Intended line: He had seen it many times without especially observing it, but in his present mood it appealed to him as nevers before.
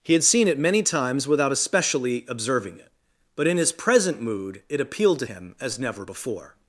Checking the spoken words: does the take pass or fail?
fail